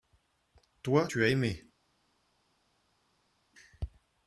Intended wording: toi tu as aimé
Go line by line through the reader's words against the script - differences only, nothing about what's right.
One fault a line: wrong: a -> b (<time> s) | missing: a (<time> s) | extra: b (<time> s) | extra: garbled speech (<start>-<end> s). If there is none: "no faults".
no faults